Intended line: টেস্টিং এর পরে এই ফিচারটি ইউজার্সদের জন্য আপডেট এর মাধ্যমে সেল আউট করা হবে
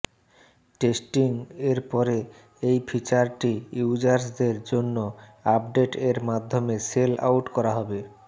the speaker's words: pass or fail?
pass